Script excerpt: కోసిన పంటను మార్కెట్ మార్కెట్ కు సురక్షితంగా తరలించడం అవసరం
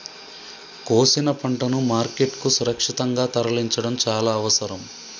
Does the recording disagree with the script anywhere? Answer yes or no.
yes